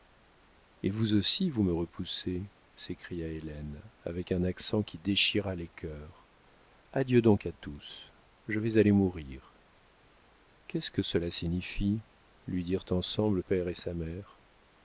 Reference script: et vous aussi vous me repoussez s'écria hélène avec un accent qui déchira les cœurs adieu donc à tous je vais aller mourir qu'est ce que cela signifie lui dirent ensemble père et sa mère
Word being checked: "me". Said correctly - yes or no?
yes